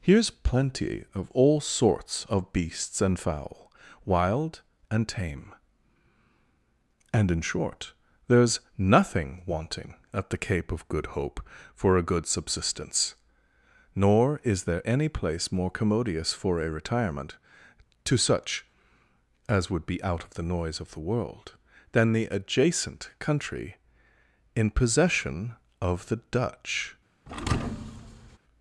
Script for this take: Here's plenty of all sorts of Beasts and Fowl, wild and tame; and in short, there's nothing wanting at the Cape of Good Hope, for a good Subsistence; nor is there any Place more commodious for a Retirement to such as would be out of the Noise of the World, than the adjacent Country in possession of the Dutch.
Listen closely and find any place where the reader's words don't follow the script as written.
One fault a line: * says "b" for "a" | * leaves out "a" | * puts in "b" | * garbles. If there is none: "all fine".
all fine